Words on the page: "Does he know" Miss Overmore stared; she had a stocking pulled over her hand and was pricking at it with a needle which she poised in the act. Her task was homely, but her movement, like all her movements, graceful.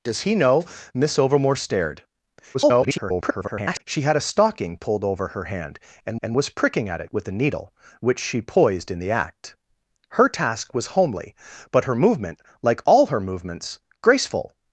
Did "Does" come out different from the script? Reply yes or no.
no